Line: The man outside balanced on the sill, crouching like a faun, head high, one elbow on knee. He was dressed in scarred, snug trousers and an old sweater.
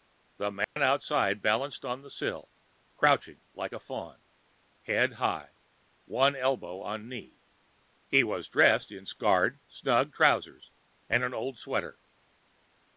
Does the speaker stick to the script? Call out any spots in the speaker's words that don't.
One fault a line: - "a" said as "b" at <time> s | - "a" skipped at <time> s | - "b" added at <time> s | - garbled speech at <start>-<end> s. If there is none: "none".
none